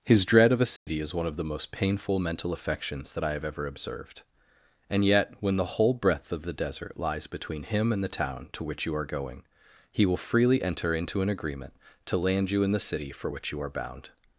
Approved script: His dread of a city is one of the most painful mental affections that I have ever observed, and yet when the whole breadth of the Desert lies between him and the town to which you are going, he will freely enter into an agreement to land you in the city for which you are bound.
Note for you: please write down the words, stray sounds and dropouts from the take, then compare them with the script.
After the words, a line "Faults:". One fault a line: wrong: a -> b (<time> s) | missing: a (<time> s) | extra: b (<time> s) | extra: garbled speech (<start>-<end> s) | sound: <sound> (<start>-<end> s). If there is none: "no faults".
His dread of a city is one of the most painful mental affections that I have ever observed, and yet when the whole breadth of the Desert lies between him and the town to which you are going, he will freely enter into an agreement to land you in the city for which you are bound.
Faults:
sound: dropout (0.8-0.9 s)